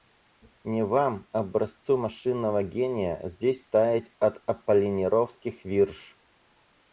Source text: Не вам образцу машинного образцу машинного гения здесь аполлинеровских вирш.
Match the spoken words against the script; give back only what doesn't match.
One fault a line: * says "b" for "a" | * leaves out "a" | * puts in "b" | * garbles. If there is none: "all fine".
* says "гения здесь таять от" for "образцу машинного гения здесь"